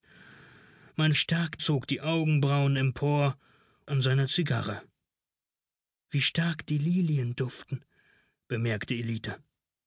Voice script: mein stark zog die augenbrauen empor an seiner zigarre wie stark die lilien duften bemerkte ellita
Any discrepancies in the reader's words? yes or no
no